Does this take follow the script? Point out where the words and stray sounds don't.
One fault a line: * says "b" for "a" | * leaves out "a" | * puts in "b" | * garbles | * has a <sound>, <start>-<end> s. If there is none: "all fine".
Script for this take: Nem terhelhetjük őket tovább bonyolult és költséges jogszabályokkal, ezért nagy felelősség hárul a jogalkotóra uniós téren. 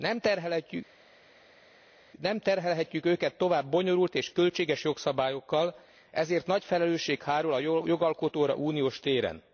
all fine